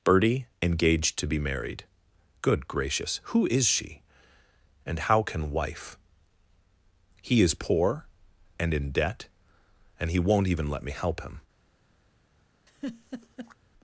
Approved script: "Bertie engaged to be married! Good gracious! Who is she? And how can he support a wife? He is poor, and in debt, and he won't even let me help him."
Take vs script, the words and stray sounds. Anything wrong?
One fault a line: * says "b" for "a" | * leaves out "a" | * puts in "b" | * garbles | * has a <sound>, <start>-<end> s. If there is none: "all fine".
* leaves out "he support a"
* has a laugh, 12.7-13.6 s